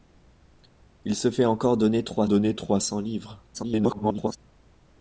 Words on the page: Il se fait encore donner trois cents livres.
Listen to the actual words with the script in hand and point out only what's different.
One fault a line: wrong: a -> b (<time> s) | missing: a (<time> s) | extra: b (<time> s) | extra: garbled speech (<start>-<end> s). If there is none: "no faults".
extra: donner trois (2.3 s)
extra: garbled speech (3.5-4.4 s)